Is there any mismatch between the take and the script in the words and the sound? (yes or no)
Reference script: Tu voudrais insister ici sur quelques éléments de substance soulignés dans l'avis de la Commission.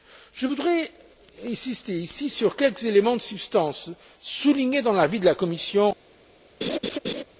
yes